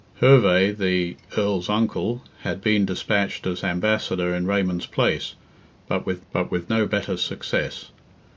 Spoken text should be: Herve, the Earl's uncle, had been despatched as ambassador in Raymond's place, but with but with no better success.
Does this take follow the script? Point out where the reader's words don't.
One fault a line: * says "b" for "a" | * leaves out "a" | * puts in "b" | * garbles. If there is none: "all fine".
all fine